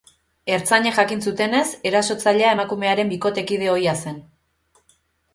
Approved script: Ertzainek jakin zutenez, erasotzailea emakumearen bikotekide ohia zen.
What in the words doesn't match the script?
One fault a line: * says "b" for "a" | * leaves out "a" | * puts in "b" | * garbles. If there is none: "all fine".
all fine